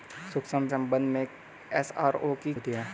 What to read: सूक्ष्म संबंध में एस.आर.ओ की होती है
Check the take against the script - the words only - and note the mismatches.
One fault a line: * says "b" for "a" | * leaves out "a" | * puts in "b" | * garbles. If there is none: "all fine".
all fine